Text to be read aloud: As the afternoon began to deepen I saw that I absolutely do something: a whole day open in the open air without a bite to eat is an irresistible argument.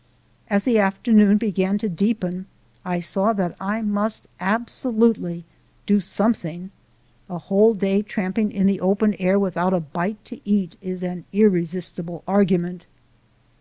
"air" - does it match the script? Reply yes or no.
yes